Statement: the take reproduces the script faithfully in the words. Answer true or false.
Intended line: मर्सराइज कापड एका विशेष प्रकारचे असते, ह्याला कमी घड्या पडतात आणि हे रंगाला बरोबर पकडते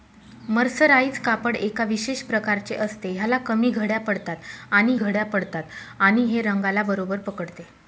false